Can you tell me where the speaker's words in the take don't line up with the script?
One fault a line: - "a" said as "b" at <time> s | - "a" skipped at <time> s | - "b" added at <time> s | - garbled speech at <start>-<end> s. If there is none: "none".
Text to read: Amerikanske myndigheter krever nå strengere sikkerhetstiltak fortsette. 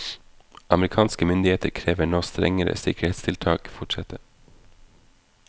none